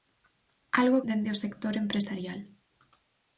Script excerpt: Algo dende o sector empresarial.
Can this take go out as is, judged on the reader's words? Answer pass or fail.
pass